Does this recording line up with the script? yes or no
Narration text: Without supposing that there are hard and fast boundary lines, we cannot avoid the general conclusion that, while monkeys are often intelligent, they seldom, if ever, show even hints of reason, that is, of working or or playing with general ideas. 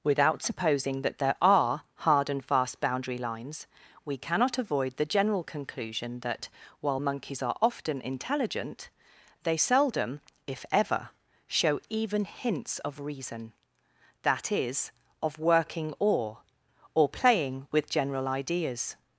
yes